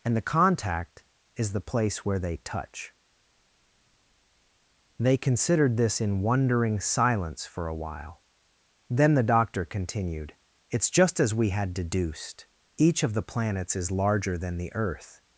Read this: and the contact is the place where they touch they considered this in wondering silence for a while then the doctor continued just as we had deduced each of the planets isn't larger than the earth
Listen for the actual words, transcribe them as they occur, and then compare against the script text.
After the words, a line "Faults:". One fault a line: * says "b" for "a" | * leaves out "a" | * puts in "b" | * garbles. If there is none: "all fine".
and the contact is the place where they touch they considered this in wondering silence for a while then the doctor continued it's just as we had deduced each of the planets is larger than the earth
Faults:
* puts in "it's"
* says "is" for "isn't"